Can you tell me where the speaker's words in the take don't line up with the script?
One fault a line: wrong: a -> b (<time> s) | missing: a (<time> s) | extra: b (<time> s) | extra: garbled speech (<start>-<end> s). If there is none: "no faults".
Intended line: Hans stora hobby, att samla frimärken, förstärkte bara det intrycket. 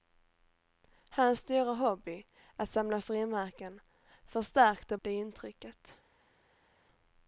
missing: bara (5.0 s)